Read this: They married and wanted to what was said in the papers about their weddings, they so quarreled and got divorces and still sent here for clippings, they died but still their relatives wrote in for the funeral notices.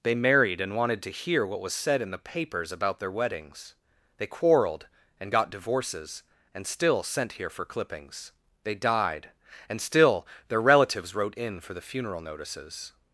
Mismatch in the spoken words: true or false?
true